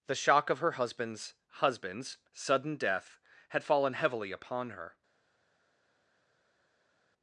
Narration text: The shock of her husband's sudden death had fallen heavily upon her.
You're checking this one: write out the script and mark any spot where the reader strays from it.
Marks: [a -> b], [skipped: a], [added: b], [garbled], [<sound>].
The shock of her husband's [added: husband's] sudden death had fallen heavily upon her.